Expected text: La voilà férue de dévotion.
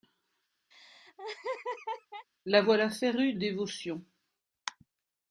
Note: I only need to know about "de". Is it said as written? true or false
false